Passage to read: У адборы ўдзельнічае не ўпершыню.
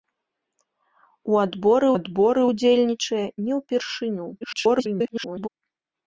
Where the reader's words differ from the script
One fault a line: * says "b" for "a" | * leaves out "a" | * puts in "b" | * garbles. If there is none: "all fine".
* puts in "адборы"
* garbles